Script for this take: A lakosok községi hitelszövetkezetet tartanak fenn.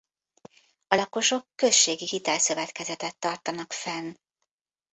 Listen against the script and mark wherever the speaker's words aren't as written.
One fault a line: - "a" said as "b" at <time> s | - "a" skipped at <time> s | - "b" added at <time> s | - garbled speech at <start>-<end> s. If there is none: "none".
none